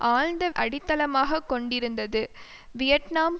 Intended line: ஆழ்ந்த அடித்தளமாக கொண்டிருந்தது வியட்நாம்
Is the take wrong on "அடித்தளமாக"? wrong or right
right